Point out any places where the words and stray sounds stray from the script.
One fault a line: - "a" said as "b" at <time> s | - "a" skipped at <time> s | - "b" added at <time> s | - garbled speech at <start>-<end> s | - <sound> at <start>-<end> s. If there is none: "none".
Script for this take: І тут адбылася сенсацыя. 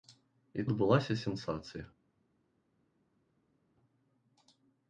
- "тут" skipped at 0.6 s